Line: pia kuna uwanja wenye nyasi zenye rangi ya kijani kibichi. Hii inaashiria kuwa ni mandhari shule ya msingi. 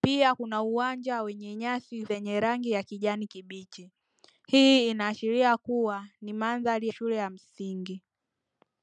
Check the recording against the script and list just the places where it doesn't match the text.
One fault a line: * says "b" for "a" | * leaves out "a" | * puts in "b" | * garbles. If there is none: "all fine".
all fine